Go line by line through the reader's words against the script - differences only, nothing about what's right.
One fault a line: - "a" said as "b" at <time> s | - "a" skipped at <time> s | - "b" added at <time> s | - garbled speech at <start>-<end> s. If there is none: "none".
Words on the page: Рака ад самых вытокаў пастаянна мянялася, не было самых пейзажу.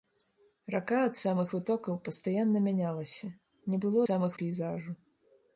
none